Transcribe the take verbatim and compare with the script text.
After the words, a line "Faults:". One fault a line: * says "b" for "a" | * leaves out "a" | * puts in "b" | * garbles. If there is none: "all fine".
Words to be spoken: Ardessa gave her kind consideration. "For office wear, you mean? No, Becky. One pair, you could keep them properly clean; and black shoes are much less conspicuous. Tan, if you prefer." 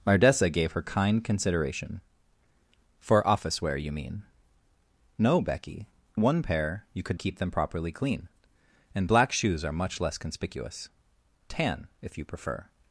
Ardessa gave her kind consideration. "For office wear, you mean? No, Becky. One pair, you could keep them properly clean; and black shoes are much less conspicuous. Tan, if you prefer."
Faults:
all fine